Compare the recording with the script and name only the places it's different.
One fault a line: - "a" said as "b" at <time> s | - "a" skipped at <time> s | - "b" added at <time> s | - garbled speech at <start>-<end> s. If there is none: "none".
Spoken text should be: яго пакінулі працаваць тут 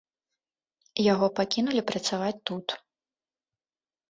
none